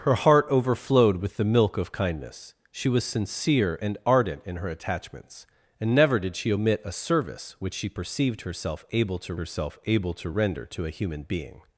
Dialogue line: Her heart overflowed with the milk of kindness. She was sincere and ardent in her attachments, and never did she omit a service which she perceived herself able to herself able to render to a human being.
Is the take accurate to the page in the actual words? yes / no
yes